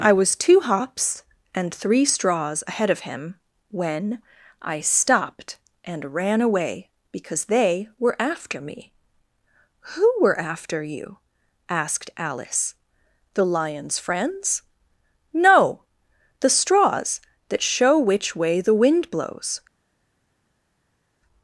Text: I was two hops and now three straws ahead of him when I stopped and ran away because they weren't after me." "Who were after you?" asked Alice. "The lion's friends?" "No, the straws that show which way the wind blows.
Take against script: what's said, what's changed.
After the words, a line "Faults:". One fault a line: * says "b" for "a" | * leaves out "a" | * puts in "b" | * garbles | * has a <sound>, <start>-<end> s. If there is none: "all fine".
I was two hops and three straws ahead of him when I stopped and ran away because they were after me." "Who were after you?" asked Alice. "The lion's friends?" "No, the straws that show which way the wind blows.
Faults:
* leaves out "now"
* says "were" for "weren't"